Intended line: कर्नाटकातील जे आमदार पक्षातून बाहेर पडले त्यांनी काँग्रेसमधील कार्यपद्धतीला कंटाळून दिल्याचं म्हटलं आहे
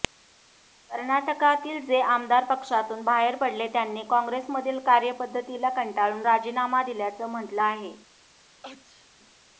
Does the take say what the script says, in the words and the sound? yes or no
no